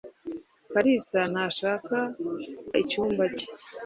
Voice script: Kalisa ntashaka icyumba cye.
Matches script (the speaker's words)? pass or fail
pass